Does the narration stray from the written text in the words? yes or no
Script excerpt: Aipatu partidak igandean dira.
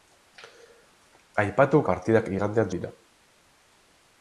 no